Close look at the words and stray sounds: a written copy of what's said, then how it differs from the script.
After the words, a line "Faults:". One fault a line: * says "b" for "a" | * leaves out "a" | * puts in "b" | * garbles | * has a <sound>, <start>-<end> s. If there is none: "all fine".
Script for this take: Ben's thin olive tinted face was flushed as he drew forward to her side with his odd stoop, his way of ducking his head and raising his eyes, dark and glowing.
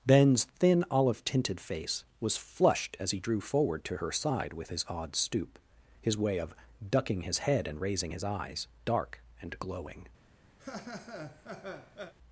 Ben's thin olive tinted face was flushed as he drew forward to her side with his odd stoop, his way of ducking his head and raising his eyes, dark and glowing.
Faults:
* has a laugh, 10.6-12.1 s